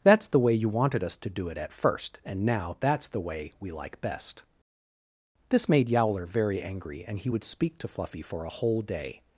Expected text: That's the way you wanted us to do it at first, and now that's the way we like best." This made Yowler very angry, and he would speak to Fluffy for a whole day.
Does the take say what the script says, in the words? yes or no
yes